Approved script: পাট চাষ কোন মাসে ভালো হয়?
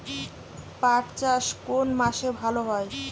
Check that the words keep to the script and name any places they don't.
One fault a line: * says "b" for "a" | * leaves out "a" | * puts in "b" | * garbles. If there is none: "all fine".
all fine